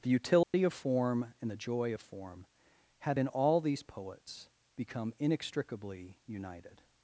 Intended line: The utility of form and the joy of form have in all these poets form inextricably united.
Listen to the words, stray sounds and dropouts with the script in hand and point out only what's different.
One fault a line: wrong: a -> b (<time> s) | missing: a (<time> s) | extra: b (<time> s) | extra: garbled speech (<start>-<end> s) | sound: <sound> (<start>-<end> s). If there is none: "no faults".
sound: dropout (0.4-0.5 s)
wrong: form -> become (4.7 s)